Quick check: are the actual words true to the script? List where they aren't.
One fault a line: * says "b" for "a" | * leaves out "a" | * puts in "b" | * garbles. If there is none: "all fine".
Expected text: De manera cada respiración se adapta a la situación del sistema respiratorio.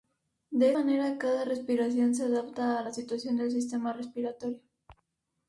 all fine